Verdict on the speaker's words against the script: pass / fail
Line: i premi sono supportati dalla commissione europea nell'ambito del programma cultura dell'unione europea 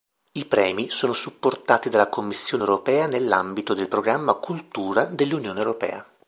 pass